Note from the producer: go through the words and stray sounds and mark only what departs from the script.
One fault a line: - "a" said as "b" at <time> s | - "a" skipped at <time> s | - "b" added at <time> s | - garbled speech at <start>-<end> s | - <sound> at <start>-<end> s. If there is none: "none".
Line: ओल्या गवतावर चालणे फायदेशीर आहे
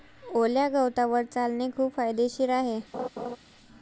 - "खूप" added at 1.7 s
- laugh at 2.9-3.4 s